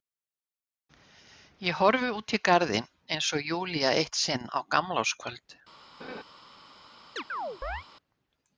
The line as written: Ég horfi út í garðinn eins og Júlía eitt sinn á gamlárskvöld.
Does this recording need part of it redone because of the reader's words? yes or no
no